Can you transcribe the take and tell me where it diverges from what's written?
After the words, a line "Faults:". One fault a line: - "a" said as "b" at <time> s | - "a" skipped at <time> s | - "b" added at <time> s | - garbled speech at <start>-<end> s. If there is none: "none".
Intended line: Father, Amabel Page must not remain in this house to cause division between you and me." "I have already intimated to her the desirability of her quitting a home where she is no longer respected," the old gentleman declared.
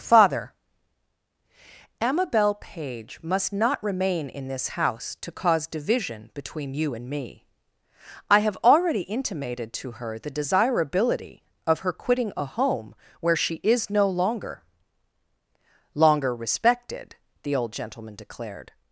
Father, Amabel Page must not remain in this house to cause division between you and me." "I have already intimated to her the desirability of her quitting a home where she is no longer longer respected," the old gentleman declared.
Faults:
- "longer" added at 16.0 s